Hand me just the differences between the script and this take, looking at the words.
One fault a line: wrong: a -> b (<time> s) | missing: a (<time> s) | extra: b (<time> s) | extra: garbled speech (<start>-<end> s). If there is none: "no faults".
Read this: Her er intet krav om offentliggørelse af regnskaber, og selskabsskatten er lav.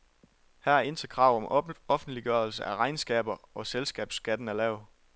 no faults